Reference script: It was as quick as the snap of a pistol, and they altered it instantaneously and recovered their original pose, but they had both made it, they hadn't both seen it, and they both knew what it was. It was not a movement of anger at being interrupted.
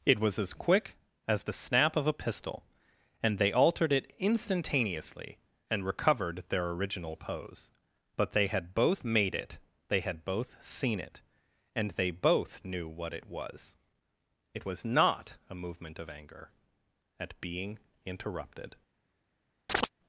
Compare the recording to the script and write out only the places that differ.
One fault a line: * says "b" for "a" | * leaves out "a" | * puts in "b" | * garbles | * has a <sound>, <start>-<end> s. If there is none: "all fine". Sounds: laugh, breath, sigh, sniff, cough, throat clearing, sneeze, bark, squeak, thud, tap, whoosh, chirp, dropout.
* says "had" for "hadn't"
* has a chirp, 19.7-19.9 s